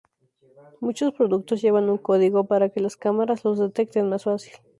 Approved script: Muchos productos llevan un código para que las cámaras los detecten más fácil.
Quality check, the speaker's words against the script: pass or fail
pass